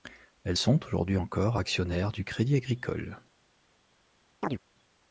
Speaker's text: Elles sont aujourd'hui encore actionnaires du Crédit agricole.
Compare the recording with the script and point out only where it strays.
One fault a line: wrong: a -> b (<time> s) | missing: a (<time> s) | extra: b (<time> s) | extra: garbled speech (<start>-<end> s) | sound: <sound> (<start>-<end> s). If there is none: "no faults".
sound: chirp (4.4-4.6 s)